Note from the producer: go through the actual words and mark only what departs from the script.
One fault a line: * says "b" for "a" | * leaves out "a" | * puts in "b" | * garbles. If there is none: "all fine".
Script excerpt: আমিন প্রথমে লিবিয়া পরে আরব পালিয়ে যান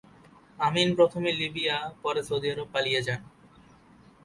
* puts in "সৌদি"